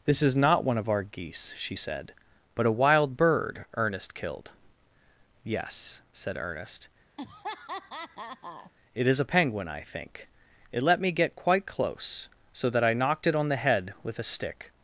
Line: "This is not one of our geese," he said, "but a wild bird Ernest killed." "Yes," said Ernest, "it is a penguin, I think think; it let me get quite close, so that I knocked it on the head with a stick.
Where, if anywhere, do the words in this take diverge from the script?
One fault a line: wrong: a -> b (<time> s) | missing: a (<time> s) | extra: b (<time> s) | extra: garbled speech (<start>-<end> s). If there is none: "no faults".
wrong: he -> she (1.6 s)
missing: think (10.3 s)